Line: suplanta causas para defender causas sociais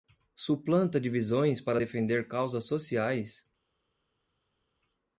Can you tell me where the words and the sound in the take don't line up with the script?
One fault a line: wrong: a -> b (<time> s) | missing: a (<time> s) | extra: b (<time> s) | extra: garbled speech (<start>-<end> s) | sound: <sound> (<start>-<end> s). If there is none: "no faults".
wrong: causas -> divisões (1.0 s)